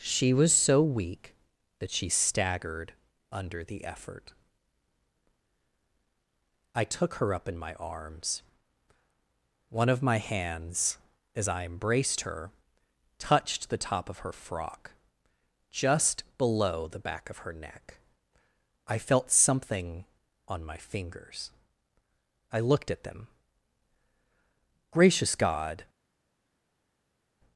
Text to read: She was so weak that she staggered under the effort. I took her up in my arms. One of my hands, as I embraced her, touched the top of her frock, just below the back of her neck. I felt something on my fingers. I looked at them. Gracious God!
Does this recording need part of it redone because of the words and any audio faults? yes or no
no